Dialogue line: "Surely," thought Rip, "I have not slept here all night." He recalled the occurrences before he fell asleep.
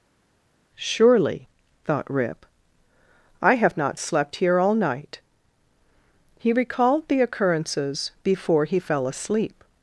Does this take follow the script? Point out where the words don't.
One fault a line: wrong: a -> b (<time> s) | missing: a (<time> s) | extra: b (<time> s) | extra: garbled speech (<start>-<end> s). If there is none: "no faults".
no faults